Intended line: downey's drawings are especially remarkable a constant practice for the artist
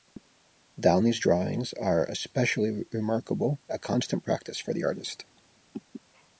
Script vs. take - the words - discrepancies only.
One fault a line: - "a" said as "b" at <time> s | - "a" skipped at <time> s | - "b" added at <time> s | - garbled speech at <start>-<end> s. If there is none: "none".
none